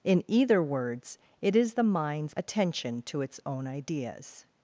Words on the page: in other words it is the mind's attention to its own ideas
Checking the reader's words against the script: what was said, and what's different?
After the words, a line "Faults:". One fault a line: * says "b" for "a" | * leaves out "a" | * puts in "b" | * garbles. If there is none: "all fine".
in either words it is the mind's attention to its own ideas
Faults:
* says "either" for "other"